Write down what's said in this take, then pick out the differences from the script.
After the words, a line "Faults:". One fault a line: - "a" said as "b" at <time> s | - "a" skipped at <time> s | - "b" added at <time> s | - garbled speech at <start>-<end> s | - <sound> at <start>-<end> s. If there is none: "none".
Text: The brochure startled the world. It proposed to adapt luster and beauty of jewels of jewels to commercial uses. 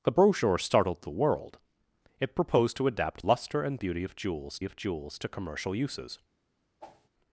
The brochure startled the world. It proposed to adapt luster and beauty of jewels of jewels to commercial uses.
Faults:
- whoosh at 6.8-7.1 s